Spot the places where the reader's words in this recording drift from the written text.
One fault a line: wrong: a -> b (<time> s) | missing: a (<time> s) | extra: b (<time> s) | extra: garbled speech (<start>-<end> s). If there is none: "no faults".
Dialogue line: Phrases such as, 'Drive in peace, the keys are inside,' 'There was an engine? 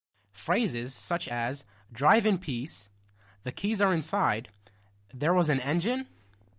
no faults